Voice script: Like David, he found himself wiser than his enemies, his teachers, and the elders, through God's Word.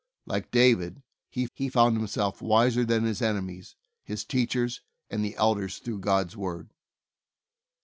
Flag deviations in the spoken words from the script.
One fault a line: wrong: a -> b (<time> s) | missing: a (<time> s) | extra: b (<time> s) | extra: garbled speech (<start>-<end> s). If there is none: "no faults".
extra: he (1.5 s)